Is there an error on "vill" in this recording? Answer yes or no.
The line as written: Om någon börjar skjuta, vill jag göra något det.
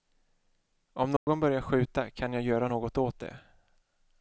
yes